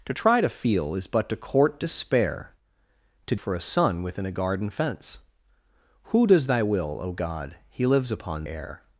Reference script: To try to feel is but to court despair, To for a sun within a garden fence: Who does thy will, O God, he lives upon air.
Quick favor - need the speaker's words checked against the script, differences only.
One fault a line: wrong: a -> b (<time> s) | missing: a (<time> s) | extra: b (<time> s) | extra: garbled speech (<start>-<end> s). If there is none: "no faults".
no faults